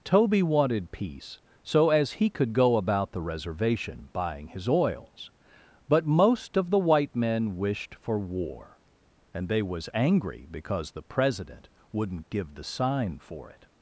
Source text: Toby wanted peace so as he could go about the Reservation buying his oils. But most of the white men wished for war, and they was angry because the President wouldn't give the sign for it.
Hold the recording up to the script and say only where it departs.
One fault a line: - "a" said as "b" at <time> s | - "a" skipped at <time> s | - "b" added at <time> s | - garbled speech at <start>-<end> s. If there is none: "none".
none